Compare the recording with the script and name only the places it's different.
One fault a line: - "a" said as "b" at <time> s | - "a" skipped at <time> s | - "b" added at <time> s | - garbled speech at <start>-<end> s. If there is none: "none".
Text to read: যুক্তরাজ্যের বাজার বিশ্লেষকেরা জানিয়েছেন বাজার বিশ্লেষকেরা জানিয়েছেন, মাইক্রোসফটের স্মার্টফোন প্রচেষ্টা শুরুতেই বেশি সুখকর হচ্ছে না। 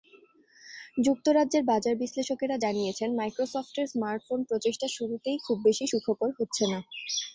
- "বাজার বিশ্লেষকেরা জানিয়েছেন" skipped at 3.1 s
- "খুব" added at 5.5 s